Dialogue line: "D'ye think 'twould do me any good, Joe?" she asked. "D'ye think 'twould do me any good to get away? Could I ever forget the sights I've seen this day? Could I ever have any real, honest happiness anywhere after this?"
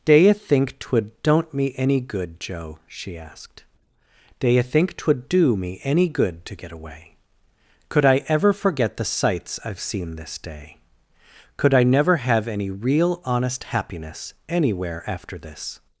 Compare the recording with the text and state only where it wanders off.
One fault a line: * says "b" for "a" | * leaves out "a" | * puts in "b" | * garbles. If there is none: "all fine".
* says "don't" for "do"
* says "never" for "ever"